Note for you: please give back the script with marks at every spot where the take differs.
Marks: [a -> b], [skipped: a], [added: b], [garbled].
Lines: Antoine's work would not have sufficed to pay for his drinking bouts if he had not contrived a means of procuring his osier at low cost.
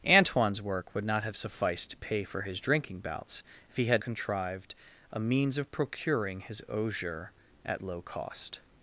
Antoine's work would not have sufficed to pay for his drinking bouts if he had [skipped: not] contrived a means of procuring his osier at low cost.